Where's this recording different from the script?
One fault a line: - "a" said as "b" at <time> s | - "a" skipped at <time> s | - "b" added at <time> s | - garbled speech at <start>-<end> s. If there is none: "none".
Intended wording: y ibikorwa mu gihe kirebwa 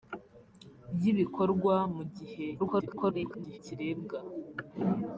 - garbled speech at 2.6-3.6 s